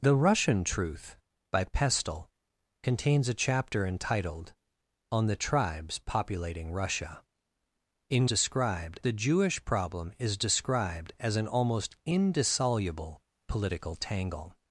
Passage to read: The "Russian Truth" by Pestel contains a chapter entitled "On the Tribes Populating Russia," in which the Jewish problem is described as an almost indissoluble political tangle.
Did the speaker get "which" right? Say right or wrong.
wrong